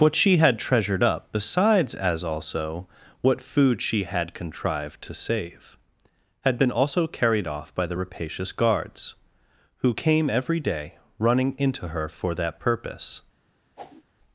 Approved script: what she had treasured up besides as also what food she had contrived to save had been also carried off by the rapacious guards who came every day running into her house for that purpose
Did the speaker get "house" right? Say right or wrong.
wrong